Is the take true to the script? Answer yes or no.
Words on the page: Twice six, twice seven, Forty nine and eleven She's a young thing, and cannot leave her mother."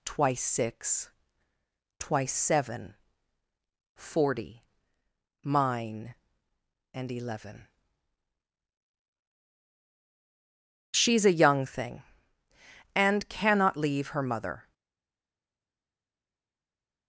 no